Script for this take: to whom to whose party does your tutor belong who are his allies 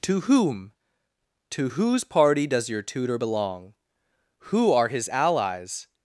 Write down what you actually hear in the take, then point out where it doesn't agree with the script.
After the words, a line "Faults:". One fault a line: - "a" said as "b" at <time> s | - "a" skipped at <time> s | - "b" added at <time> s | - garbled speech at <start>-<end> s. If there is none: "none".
to whom to whose party does your tutor belong who are his allies
Faults:
none